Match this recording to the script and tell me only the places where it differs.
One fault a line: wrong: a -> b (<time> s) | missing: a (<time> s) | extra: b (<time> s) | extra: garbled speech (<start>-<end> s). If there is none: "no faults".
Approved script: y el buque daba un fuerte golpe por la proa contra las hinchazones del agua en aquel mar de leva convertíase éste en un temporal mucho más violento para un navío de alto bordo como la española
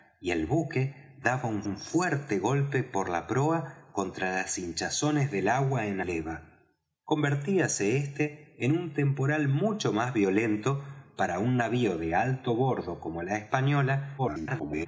extra: un (1.6 s)
missing: aquel mar de (6.0 s)
extra: garbled speech (14.2-14.9 s)